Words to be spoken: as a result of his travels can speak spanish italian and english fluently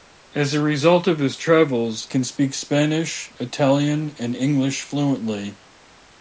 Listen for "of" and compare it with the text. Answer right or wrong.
right